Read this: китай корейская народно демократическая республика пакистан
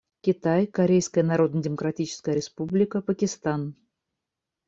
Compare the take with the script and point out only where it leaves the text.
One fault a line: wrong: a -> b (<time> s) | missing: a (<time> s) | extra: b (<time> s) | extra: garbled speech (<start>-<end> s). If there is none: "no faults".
no faults